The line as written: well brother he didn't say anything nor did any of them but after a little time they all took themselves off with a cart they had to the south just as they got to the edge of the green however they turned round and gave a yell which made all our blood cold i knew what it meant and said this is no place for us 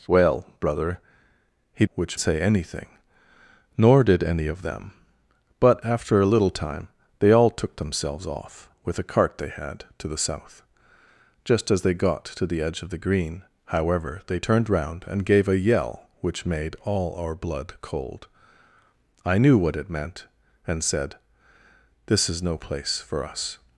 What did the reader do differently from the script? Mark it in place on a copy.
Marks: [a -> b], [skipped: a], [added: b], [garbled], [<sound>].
well brother he [didn't -> which] say anything nor did any of them but after a little time they all took themselves off with a cart they had to the south just as they got to the edge of the green however they turned round and gave a yell which made all our blood cold i knew what it meant and said this is no place for us